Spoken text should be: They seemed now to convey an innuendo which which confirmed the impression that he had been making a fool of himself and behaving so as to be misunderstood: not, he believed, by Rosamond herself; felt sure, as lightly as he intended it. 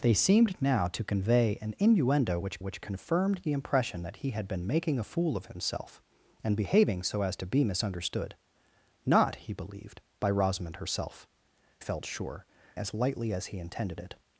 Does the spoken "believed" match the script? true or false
true